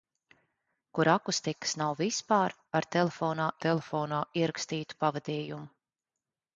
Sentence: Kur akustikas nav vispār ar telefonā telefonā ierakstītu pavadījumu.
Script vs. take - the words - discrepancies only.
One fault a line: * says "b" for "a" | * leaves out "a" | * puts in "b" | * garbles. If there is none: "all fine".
all fine